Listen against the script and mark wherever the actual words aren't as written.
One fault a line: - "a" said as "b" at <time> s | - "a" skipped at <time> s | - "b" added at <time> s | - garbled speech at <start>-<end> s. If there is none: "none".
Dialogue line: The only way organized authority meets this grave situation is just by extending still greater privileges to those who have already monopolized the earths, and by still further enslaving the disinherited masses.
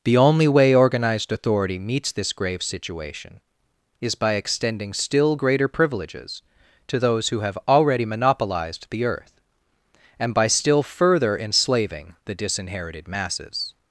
- "just" skipped at 4.2 s
- "earths" said as "earth" at 9.1 s